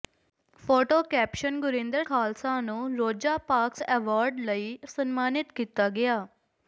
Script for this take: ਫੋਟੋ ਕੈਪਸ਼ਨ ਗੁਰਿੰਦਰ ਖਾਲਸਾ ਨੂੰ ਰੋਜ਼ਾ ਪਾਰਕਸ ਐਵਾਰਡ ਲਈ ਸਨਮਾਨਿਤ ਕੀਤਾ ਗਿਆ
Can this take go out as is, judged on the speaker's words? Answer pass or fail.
pass